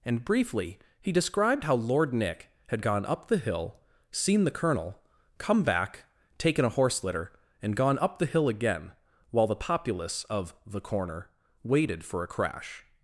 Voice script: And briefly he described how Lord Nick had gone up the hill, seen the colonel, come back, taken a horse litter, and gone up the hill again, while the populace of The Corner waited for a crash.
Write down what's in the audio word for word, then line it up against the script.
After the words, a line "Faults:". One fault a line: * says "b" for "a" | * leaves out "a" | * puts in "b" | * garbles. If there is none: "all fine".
And briefly he described how Lord Nick had gone up the hill, seen the colonel, come back, taken a horse litter, and gone up the hill again, while the populace of The Corner waited for a crash.
Faults:
all fine